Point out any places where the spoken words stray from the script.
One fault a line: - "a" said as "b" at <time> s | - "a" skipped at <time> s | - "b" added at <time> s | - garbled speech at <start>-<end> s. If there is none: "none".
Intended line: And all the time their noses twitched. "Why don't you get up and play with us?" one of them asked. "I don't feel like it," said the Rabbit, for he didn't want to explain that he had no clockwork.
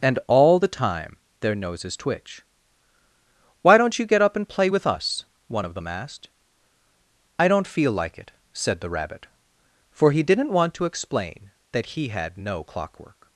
- "twitched" said as "twitch" at 2.0 s